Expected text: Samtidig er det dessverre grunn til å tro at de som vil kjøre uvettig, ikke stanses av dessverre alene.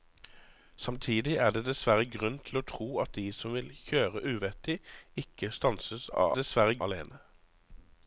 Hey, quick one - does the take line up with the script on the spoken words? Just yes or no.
yes